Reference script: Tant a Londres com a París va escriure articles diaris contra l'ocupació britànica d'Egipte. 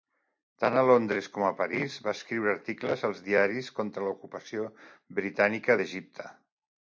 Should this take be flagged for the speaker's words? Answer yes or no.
yes